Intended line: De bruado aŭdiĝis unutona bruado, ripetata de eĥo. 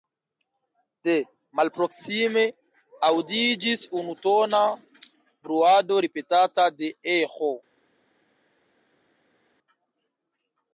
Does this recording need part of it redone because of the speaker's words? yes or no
yes